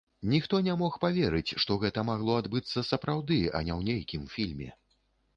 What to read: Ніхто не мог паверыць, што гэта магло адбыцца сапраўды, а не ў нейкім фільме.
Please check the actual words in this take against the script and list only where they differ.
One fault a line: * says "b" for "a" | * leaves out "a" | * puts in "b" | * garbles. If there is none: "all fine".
all fine